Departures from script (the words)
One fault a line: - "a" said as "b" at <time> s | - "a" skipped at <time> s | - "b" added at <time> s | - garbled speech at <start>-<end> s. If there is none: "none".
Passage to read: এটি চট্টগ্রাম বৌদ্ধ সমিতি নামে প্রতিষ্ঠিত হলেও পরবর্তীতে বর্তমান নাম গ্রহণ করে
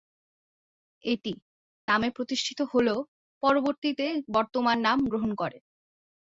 - "চট্টগ্রাম বৌদ্ধ সমিতি" skipped at 1.3 s